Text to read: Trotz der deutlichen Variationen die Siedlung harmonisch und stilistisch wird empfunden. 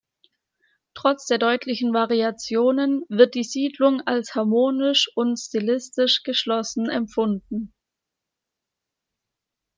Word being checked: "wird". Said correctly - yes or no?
no